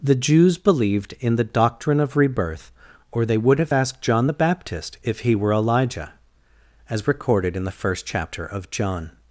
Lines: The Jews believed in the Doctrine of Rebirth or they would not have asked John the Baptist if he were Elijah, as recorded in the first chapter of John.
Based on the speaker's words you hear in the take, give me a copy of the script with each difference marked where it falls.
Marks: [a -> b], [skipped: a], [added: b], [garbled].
The Jews believed in the Doctrine of Rebirth or they would [skipped: not] have asked John the Baptist if he were Elijah, as recorded in the first chapter of John.